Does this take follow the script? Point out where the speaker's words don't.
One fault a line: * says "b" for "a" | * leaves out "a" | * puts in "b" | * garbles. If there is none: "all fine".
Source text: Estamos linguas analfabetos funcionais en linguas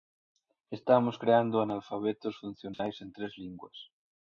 * says "creando" for "linguas"
* puts in "tres"